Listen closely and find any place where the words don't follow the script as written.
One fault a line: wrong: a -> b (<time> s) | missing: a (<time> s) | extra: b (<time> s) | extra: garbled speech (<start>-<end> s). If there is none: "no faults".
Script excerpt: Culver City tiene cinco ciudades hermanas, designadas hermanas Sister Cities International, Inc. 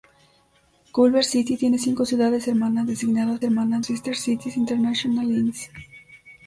no faults